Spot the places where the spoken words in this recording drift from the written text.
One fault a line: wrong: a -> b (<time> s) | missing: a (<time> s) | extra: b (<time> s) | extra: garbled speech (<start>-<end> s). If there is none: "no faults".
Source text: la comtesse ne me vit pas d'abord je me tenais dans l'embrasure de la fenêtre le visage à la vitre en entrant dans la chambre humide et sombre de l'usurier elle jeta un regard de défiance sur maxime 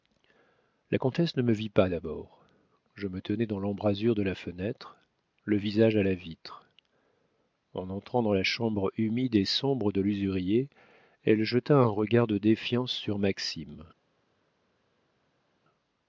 no faults